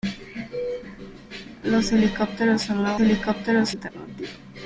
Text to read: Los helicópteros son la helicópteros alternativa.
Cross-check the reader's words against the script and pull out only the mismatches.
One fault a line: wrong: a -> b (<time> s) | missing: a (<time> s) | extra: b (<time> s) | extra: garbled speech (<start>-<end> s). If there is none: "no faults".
no faults